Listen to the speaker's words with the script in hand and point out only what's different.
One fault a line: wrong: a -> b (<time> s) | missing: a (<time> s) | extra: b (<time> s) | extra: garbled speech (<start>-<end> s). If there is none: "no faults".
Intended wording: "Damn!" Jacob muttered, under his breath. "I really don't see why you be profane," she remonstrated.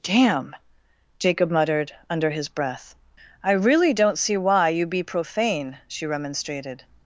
no faults